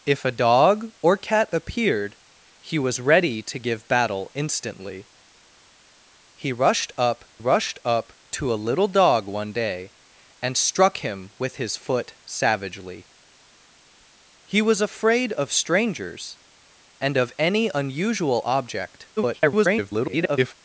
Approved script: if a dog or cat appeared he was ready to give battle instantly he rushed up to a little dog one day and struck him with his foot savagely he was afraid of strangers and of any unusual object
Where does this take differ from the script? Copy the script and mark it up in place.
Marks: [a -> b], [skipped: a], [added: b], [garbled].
if a dog or cat appeared he was ready to give battle instantly he rushed up [added: rushed up] to a little dog one day and struck him with his foot savagely he was afraid of strangers and of any unusual object [garbled]